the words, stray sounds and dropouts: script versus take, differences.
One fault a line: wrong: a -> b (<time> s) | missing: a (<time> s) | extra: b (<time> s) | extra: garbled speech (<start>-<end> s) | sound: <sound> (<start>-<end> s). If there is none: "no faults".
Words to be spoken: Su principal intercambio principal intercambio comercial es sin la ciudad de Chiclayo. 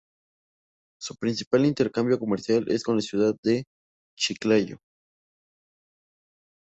missing: principal intercambio (2.2 s)
wrong: sin -> con (2.8 s)